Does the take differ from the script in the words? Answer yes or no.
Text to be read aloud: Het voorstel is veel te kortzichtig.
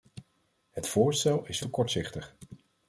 yes